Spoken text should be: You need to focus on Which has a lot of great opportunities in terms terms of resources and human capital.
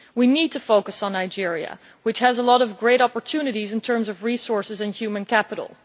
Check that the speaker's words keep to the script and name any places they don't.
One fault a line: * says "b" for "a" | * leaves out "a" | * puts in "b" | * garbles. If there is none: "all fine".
* says "We" for "You"
* puts in "Nigeria"
* leaves out "terms"